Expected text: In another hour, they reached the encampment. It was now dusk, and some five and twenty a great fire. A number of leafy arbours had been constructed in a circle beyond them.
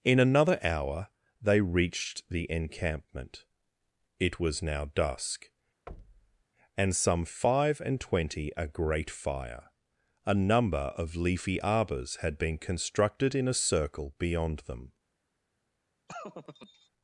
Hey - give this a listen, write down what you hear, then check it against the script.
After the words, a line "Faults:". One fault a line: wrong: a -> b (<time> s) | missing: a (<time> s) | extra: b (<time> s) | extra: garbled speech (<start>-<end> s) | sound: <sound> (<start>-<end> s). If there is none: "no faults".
In another hour, they reached the encampment. It was now dusk, and some five and twenty a great fire. A number of leafy arbours had been constructed in a circle beyond them.
Faults:
sound: thud (5.9-6.4 s)
sound: laugh (16.1-16.9 s)